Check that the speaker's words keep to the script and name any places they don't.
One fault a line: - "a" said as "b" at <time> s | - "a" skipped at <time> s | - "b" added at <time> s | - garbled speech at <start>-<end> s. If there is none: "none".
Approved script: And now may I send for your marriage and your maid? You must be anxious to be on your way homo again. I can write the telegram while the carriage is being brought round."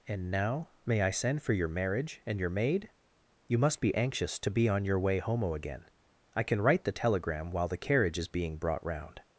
none